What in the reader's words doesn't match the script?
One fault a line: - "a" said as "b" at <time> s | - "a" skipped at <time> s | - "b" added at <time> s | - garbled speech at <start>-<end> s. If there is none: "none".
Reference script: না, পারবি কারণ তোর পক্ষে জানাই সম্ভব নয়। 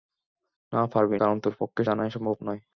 none